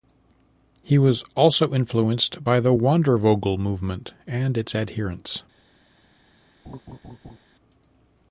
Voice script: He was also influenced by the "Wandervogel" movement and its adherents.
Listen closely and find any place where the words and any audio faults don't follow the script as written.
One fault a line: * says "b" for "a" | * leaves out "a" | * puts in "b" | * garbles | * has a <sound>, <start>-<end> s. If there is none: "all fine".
* has a laugh, 6.6-7.4 s